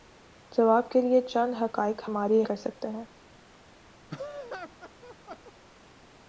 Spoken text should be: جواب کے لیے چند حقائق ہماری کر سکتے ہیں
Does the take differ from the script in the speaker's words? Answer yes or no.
no